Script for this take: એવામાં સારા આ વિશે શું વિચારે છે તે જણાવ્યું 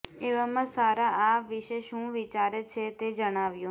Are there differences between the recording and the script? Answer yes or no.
no